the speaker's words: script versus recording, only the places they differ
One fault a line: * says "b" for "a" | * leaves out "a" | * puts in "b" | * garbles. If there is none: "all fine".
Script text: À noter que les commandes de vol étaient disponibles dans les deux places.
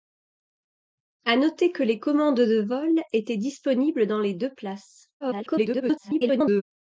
* garbles